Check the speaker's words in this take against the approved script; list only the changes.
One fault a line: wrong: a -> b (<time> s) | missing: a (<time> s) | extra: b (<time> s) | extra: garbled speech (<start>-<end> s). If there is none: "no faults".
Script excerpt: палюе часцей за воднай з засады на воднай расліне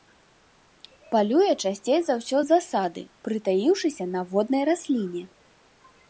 wrong: воднай -> ўсё (2.2 s)
extra: прытаіўшыся (3.3 s)